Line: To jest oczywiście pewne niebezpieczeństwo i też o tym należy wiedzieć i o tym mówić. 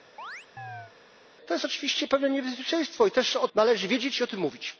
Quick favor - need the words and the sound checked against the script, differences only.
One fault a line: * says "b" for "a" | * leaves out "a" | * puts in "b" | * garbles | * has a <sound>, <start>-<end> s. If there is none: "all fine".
* has a chirp, 0.2-0.9 s
* leaves out "tym"